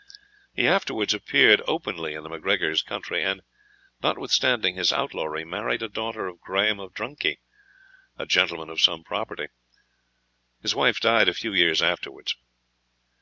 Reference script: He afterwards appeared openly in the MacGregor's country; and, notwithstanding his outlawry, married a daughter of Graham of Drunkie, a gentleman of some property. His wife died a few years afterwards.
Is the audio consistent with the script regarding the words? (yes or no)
yes